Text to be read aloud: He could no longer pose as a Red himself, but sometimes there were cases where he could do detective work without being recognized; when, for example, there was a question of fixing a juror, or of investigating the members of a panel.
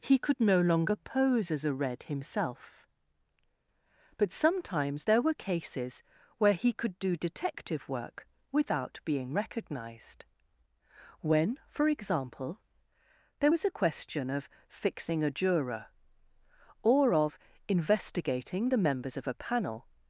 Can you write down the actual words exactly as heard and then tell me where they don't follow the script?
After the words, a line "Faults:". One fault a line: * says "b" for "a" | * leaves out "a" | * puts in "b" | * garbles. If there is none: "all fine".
He could no longer pose as a Red himself, but sometimes there were cases where he could do detective work without being recognized; when, for example, there was a question of fixing a juror, or of investigating the members of a panel.
Faults:
all fine